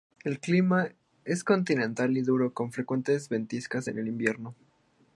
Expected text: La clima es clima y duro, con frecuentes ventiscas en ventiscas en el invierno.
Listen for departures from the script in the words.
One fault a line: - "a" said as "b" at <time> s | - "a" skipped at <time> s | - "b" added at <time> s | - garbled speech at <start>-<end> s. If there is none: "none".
- "La" said as "El" at 0.2 s
- "clima" said as "continental" at 1.4 s
- "ventiscas en" skipped at 4.0 s